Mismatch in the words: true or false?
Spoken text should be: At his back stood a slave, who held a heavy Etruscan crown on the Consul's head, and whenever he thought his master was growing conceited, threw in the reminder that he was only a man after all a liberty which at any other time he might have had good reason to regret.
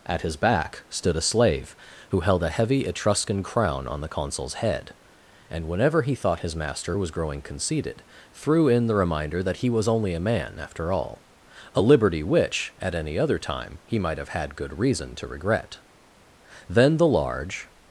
true